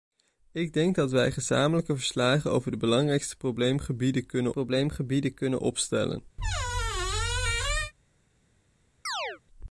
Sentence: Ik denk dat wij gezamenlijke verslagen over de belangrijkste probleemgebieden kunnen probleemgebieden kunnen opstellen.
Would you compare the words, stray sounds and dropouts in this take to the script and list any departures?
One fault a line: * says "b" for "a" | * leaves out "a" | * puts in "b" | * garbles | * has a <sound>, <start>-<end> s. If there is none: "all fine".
* has a squeak, 6.4-7.9 s
* has a chirp, 9.1-9.4 s